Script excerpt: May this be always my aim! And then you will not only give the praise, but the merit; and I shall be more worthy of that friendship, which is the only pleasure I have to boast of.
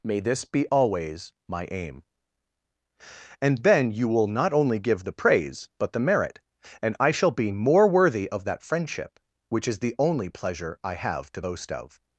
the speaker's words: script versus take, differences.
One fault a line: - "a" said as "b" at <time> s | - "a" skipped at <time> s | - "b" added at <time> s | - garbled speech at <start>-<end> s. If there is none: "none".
none